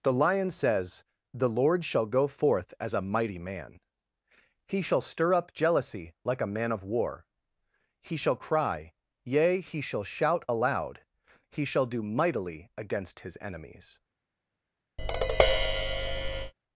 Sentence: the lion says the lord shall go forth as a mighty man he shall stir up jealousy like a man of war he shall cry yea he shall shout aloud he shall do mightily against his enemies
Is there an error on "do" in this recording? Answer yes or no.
no